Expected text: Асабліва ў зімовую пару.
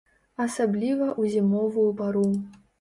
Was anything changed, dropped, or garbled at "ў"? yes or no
no